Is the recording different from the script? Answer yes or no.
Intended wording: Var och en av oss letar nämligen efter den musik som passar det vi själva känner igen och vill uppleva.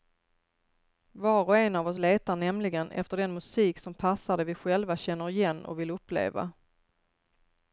no